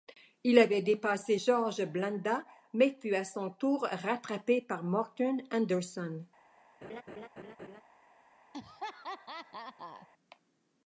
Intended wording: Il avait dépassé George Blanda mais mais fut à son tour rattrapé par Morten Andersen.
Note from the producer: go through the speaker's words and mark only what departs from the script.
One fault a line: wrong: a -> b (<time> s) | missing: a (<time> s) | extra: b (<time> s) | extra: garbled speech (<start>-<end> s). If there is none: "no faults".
missing: mais (3.0 s)